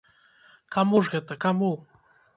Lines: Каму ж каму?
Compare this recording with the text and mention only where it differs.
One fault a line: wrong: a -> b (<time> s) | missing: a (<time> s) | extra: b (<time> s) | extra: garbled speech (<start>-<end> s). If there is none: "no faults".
extra: гэта (1.1 s)